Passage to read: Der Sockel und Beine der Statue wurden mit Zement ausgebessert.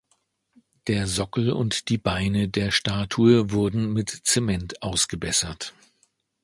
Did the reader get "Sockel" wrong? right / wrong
right